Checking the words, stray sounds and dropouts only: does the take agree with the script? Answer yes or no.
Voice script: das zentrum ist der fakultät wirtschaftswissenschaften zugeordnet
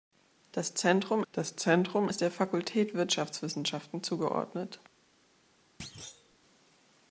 no